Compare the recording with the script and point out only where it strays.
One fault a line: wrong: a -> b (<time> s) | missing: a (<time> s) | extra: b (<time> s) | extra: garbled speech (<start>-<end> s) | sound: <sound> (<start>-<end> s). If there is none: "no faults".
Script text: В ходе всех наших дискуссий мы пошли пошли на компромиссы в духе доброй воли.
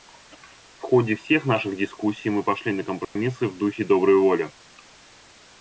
missing: пошли (2.7 s)
sound: dropout (3.0-3.2 s)